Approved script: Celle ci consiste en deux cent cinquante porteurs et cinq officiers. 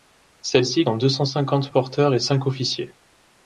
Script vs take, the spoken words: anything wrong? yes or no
yes